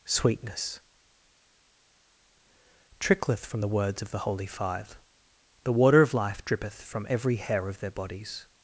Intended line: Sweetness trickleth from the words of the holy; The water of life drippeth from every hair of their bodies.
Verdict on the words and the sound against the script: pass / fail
fail